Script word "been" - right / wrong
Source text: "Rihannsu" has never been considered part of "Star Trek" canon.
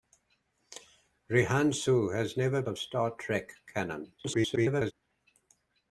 wrong